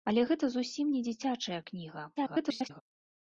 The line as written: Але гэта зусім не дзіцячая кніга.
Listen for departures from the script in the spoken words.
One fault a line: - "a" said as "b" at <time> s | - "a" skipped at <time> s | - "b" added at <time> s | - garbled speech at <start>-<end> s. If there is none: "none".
- garbled speech at 2.2-2.8 s